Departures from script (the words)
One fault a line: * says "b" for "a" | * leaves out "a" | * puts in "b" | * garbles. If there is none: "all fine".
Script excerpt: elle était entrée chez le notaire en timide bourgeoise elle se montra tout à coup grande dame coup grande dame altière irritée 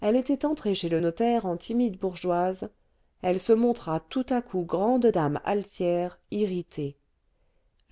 * leaves out "coup grande dame"